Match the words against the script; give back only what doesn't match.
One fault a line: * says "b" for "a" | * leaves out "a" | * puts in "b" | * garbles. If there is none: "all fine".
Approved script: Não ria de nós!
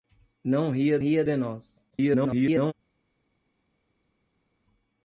* puts in "ria"
* garbles